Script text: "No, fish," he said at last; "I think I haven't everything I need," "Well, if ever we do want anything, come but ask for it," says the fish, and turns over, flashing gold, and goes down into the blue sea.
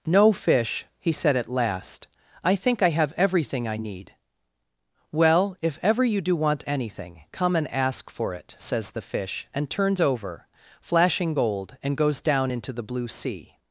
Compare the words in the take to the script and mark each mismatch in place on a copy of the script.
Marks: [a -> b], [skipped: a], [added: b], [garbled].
"No, fish," he said at last; "I think I [haven't -> have] everything I need," "Well, if ever [we -> you] do want anything, come [but -> and] ask for it," says the fish, and turns over, flashing gold, and goes down into the blue sea.